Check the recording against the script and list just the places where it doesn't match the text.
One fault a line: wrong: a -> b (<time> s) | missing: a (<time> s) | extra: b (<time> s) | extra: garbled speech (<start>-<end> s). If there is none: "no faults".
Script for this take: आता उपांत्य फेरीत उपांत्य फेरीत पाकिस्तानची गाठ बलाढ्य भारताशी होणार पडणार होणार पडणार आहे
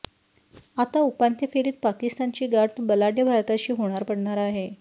missing: उपांत्य फेरीत (1.7 s)
missing: होणार पडणार (4.4 s)